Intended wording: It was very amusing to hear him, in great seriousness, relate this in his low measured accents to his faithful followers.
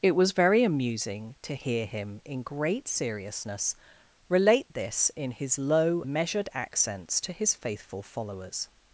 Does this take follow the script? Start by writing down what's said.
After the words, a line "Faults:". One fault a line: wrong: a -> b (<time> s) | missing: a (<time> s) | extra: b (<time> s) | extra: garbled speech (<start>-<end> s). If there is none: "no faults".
It was very amusing to hear him, in great seriousness, relate this in his low measured accents to his faithful followers.
Faults:
no faults